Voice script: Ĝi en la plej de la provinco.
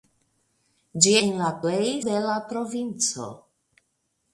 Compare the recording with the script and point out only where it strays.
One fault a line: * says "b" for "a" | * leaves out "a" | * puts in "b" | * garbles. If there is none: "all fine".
all fine